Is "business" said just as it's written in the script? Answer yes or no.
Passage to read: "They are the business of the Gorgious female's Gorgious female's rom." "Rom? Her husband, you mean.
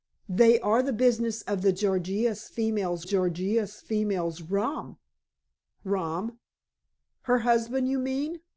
yes